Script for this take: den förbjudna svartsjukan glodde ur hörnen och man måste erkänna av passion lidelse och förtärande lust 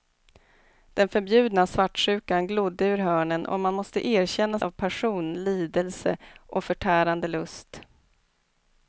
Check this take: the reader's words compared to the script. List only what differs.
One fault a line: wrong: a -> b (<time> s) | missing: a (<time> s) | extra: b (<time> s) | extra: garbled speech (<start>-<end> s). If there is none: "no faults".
no faults